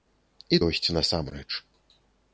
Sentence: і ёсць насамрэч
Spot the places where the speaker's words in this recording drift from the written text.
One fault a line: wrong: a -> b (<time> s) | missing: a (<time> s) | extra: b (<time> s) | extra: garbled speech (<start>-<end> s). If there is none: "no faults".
no faults